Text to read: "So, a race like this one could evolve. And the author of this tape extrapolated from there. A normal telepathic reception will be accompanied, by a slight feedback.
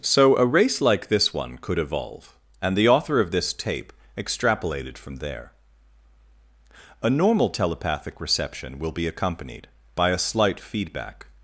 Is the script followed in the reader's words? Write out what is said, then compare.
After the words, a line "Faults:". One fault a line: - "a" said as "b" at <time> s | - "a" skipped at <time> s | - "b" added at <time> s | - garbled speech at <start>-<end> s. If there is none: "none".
"So, a race like this one could evolve. And the author of this tape extrapolated from there. A normal telepathic reception will be accompanied, by a slight feedback.
Faults:
none